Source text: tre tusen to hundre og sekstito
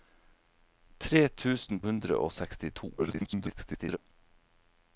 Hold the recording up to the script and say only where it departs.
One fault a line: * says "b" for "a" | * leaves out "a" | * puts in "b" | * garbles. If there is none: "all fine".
* leaves out "to"
* garbles